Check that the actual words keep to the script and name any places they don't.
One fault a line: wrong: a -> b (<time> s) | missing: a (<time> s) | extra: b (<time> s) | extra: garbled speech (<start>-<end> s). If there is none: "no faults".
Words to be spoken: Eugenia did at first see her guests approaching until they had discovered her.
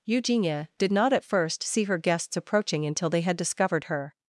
extra: not (0.9 s)